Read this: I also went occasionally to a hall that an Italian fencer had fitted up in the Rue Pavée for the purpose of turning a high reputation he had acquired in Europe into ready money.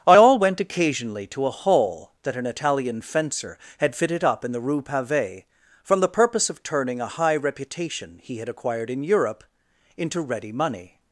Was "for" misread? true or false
true